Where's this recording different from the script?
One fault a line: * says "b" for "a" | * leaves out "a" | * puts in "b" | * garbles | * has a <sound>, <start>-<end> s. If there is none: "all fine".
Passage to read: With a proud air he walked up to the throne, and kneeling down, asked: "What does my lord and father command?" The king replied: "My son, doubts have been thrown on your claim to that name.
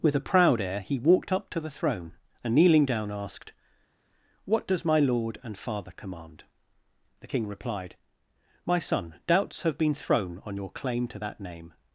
all fine